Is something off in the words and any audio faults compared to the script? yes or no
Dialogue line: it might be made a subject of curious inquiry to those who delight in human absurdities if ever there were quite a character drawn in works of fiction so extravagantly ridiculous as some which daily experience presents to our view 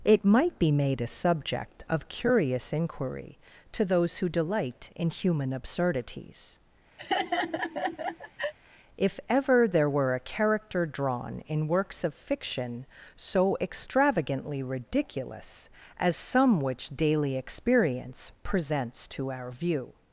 yes